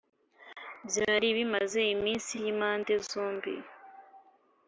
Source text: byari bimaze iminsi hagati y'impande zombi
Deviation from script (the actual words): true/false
true